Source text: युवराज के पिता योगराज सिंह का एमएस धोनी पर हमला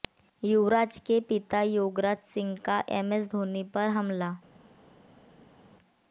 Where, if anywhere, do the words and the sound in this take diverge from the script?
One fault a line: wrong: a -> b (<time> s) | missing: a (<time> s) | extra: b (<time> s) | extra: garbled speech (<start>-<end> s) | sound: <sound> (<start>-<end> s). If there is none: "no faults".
no faults